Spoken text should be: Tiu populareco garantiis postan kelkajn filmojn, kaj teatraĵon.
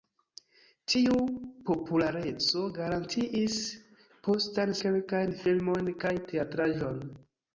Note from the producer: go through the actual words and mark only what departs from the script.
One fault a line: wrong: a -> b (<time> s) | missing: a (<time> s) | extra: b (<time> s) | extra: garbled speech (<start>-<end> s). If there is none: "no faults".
no faults